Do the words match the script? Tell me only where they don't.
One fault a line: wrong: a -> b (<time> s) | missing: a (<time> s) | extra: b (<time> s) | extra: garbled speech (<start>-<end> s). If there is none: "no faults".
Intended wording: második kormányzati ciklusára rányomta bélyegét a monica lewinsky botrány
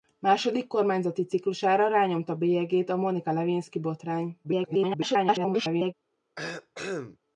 extra: garbled speech (4.4-5.9 s)